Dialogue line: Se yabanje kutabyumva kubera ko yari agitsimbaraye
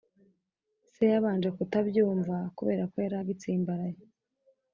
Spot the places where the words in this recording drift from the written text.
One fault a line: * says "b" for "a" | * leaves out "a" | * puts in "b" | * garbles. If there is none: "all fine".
all fine